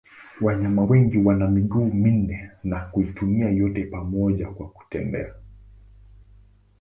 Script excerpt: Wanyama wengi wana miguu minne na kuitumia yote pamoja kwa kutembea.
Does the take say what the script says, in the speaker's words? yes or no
yes